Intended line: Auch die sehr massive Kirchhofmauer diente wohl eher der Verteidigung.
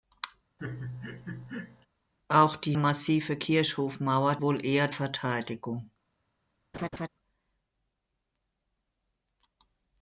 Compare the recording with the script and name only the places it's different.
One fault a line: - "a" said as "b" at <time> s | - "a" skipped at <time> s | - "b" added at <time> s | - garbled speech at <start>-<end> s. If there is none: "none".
- "sehr" skipped at 2.8 s
- "diente" skipped at 4.4 s
- "der" skipped at 4.9 s